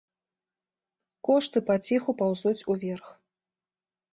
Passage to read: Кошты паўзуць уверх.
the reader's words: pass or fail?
fail